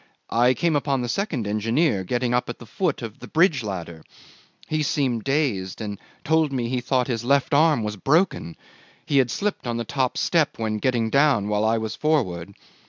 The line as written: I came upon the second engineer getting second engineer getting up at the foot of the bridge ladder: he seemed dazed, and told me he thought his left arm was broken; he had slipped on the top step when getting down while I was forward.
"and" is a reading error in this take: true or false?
false